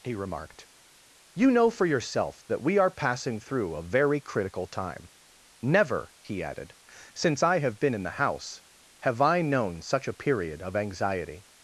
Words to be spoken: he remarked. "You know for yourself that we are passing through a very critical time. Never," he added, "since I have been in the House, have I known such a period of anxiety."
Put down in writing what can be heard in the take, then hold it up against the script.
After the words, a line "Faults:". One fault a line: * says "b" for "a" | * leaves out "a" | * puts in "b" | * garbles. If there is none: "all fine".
he remarked. "You know for yourself that we are passing through a very critical time. Never," he added, "since I have been in the House, have I known such a period of anxiety."
Faults:
all fine